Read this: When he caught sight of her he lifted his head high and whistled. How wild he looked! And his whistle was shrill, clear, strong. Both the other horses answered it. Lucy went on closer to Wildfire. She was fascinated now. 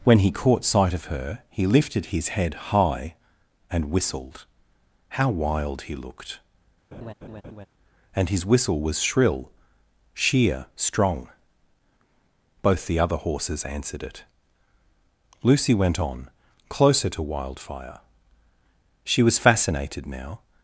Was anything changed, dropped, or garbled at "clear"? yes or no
yes